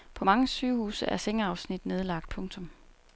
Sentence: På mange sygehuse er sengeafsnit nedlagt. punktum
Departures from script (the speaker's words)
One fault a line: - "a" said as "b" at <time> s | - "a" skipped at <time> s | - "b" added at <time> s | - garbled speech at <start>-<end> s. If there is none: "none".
none